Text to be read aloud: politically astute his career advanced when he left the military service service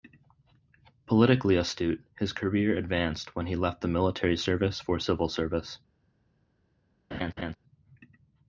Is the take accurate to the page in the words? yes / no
no